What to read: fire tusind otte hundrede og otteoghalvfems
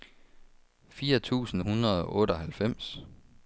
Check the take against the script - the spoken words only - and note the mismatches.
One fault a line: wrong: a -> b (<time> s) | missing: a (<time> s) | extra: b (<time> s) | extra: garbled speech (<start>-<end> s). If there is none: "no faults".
missing: otte (1.6 s)